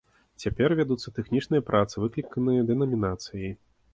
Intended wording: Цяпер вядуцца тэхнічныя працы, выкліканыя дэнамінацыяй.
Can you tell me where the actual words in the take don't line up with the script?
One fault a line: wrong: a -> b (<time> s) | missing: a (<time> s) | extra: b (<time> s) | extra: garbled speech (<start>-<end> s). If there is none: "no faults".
no faults